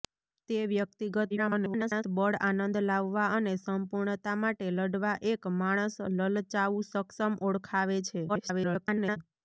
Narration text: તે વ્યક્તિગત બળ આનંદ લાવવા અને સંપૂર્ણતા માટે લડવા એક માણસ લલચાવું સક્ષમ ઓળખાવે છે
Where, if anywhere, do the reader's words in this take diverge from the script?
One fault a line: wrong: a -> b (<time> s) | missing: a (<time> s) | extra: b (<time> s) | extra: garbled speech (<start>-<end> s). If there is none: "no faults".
extra: garbled speech (1.3-2.0 s)
extra: garbled speech (8.3-9.2 s)